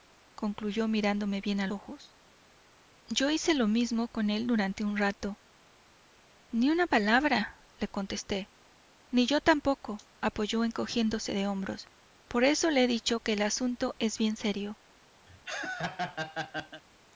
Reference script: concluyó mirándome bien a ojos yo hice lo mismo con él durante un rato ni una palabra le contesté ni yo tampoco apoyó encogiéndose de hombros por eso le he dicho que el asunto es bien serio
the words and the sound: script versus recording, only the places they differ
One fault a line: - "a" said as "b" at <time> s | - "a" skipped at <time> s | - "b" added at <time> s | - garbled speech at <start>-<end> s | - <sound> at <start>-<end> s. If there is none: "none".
- laugh at 15.3-16.8 s